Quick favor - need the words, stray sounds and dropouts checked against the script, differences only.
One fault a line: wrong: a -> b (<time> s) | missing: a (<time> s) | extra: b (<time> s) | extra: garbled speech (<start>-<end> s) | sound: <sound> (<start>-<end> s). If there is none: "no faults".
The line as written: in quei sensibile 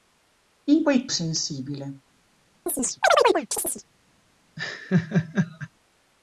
sound: chirp (2.7-3.8 s)
sound: laugh (4.6-5.7 s)